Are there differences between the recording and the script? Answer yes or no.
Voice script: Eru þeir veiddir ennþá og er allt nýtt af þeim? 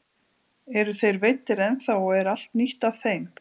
no